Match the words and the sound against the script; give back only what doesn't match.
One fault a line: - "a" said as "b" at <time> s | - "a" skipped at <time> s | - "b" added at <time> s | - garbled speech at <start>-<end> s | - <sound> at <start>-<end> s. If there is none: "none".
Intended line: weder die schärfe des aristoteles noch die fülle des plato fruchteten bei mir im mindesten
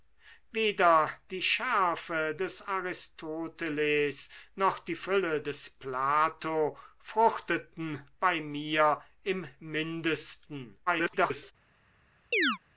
- garbled speech at 10.9-11.5 s
- chirp at 12.3-12.6 s